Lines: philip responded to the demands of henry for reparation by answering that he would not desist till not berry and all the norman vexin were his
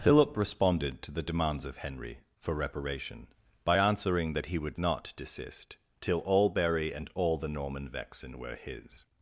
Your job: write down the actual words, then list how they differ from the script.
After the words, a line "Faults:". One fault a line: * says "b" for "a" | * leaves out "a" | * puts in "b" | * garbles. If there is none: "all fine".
philip responded to the demands of henry for reparation by answering that he would not desist till all berry and all the norman vexin were his
Faults:
* says "all" for "not"